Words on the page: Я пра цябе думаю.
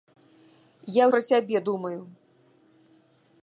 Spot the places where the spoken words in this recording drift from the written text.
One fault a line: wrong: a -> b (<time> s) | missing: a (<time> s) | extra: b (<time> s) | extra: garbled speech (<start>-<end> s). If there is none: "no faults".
no faults